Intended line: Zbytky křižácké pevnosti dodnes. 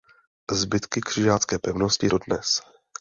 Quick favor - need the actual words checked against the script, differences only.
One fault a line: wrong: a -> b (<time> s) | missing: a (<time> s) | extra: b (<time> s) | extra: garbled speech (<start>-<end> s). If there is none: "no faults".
no faults